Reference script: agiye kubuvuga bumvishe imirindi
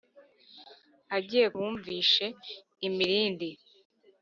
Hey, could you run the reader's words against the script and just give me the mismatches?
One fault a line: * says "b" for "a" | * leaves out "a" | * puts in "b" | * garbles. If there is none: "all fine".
* leaves out "kubuvuga"